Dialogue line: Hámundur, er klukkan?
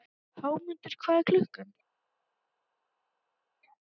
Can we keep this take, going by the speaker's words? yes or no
no